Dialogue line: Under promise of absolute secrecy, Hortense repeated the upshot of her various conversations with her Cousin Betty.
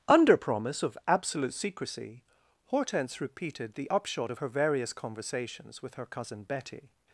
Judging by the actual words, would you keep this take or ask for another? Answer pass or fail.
pass